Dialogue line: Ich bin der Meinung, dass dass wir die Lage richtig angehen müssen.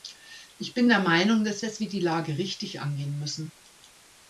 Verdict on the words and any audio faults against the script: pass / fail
pass